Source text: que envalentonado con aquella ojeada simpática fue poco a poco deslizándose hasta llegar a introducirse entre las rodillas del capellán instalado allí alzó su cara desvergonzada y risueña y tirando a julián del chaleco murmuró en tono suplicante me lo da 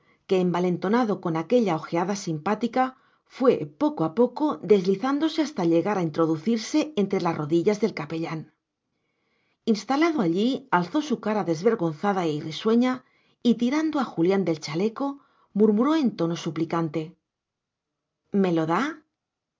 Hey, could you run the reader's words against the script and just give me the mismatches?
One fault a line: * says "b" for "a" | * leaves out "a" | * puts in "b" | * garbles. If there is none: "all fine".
all fine